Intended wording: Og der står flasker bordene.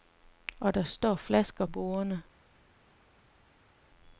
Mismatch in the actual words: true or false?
false